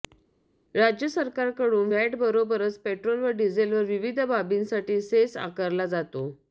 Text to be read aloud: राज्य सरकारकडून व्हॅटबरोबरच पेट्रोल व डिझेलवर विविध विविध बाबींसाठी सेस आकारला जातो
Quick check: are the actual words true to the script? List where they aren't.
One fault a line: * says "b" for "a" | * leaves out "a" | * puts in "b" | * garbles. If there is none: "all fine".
* leaves out "विविध"